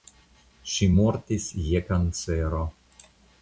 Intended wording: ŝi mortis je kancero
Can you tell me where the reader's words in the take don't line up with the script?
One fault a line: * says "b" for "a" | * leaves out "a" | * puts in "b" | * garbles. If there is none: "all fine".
all fine